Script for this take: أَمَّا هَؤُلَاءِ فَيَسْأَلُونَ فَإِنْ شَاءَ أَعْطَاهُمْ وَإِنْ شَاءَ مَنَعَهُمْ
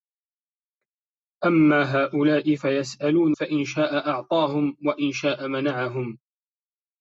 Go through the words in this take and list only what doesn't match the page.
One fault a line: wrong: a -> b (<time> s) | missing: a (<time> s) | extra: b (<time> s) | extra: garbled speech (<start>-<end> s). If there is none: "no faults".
no faults